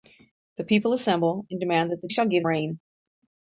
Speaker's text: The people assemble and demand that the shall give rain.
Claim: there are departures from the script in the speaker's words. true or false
false